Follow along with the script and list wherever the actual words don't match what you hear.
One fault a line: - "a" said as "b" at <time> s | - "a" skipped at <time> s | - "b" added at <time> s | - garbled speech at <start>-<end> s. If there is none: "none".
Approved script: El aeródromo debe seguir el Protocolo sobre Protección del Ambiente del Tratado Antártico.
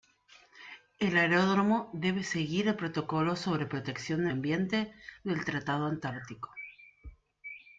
none